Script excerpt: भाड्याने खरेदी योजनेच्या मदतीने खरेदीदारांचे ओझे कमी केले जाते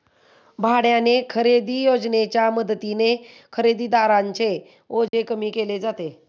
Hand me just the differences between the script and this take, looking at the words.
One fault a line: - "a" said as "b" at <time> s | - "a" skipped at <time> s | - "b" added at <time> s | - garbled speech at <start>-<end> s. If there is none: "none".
none